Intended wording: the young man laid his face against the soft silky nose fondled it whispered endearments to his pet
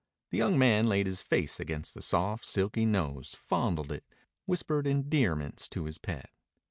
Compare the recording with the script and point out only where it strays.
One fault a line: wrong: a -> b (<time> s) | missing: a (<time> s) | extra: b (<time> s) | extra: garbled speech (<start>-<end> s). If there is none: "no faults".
no faults